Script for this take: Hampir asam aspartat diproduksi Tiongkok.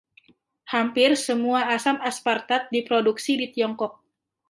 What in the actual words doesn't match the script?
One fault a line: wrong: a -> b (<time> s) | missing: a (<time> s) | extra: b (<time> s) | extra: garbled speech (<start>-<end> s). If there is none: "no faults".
extra: semua (1.1 s)
extra: di (3.4 s)